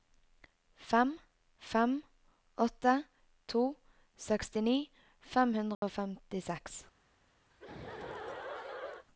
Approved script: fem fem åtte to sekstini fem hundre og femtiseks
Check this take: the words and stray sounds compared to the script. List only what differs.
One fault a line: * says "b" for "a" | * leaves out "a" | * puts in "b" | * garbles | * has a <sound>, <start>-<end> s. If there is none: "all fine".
* has a dropout, 5.7-5.8 s
* has a laugh, 7.5-9.1 s